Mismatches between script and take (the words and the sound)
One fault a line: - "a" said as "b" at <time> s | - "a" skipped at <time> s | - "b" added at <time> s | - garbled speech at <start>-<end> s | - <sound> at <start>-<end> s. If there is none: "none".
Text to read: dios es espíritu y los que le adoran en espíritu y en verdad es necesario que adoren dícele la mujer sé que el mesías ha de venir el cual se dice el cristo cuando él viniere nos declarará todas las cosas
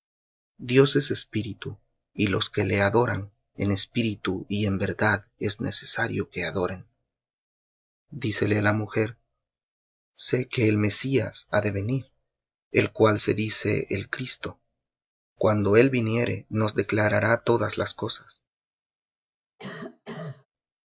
- cough at 19.6-20.5 s